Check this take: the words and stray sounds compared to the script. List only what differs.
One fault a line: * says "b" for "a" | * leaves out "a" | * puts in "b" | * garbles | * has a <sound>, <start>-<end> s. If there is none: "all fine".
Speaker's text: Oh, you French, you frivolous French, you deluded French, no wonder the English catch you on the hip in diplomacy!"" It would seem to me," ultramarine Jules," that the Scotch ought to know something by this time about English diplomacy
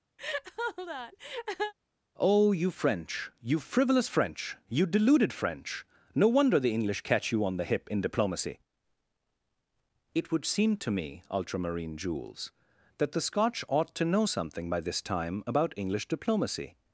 * has a laugh, 0.2-1.7 s